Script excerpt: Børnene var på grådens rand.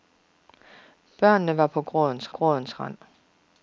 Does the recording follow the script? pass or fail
fail